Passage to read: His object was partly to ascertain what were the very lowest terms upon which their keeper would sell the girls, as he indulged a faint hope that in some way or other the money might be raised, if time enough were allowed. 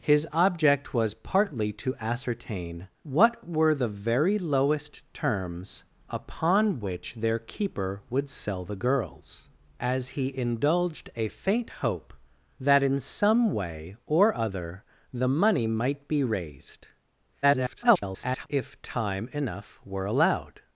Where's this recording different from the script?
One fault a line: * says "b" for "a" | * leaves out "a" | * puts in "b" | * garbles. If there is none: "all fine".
* garbles